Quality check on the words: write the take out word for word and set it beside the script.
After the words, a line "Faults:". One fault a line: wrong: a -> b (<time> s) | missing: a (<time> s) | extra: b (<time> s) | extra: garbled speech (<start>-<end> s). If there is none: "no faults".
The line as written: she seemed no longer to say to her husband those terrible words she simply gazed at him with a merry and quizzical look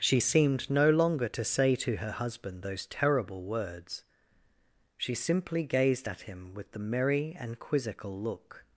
she seemed no longer to say to her husband those terrible words she simply gazed at him with the merry and quizzical look
Faults:
wrong: a -> the (6.7 s)